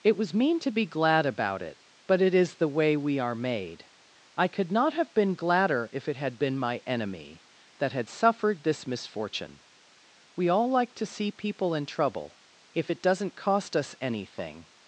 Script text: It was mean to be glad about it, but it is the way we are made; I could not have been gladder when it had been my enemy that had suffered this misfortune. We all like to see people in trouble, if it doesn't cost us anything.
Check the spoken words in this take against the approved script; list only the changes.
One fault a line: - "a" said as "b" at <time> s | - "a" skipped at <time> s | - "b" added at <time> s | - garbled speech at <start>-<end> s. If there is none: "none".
- "when" said as "if" at 5.9 s